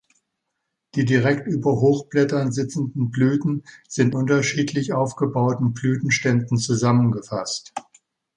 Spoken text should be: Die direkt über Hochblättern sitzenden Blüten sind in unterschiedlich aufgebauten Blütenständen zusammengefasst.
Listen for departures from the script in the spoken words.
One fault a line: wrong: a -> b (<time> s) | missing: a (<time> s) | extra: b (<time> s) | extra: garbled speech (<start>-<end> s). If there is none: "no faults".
missing: in (4.2 s)